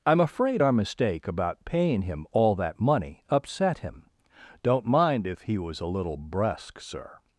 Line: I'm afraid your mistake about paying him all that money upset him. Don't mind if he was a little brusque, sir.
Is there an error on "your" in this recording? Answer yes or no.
yes